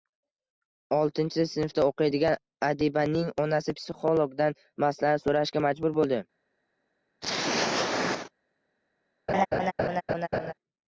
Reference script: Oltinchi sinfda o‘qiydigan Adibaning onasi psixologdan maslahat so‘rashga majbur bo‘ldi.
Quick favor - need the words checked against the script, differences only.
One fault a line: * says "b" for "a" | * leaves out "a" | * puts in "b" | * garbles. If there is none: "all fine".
all fine